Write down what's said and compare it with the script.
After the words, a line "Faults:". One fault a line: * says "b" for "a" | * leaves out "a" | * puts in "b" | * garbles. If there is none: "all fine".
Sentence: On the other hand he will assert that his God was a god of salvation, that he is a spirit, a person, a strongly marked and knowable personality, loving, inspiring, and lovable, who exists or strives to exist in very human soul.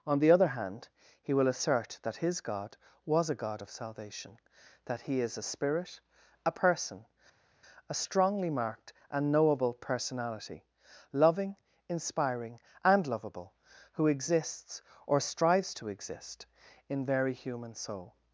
On the other hand he will assert that his God was a god of salvation, that he is a spirit, a person, a strongly marked and knowable personality, loving, inspiring, and lovable, who exists or strives to exist in very human soul.
Faults:
all fine